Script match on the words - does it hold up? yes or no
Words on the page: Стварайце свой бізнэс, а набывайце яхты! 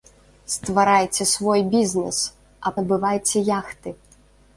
yes